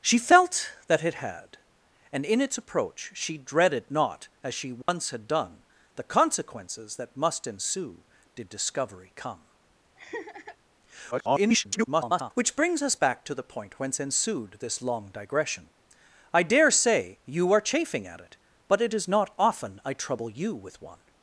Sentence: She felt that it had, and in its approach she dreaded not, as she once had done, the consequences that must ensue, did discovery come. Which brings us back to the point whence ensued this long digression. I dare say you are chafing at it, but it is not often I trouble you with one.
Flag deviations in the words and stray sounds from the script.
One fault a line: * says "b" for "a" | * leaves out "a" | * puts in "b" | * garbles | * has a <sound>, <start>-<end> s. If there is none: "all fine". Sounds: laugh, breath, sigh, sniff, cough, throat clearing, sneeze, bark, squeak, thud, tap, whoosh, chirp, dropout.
* has a dropout, 4.8-4.9 s
* has a laugh, 10.0-10.6 s
* garbles